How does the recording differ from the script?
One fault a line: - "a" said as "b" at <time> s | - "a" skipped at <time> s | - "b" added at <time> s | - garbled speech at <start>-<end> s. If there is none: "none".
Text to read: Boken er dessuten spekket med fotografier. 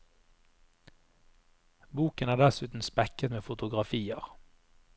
none